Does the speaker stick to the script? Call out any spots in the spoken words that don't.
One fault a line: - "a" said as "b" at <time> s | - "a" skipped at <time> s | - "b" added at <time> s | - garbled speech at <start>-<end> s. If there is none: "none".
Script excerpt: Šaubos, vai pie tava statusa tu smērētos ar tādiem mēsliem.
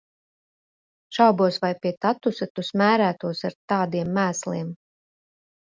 - "tava" skipped at 1.9 s